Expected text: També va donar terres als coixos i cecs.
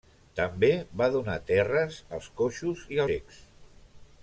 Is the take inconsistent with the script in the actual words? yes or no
no